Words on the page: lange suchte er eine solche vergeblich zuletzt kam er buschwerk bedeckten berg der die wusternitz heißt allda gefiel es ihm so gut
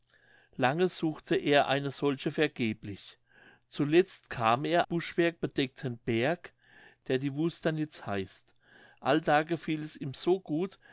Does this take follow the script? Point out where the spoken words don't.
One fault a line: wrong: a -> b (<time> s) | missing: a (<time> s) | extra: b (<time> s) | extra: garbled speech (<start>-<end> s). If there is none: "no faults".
no faults